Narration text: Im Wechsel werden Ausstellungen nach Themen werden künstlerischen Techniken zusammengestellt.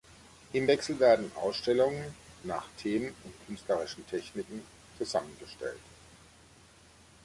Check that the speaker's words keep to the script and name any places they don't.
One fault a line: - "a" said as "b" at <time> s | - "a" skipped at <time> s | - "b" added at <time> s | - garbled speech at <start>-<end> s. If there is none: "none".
- "werden" said as "und" at 3.2 s